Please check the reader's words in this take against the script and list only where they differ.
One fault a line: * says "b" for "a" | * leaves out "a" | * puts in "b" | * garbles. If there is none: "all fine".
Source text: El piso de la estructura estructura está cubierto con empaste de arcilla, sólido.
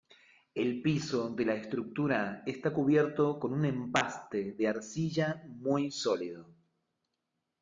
* leaves out "estructura"
* puts in "un"
* puts in "muy"